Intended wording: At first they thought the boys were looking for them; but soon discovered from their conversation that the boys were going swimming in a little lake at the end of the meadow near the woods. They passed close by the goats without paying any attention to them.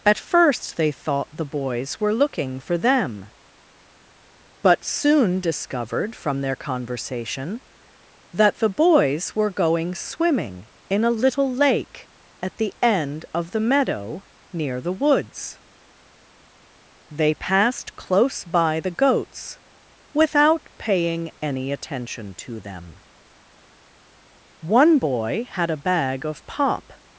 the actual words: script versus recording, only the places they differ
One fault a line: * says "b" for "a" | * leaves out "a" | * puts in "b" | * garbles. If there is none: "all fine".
* puts in "One boy had a bag of pop"